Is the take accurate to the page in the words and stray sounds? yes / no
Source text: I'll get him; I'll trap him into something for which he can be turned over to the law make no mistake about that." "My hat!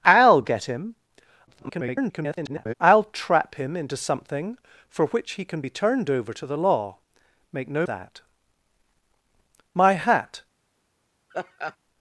no